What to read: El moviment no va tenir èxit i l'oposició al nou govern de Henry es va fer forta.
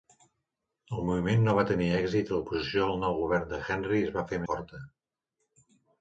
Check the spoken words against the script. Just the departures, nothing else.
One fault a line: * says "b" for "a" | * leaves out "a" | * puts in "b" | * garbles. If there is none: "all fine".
all fine